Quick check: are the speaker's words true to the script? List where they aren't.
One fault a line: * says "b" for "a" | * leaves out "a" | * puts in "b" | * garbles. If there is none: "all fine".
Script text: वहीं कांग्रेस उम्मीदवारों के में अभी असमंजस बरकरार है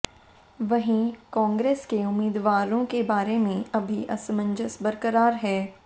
* puts in "के"
* puts in "बारे"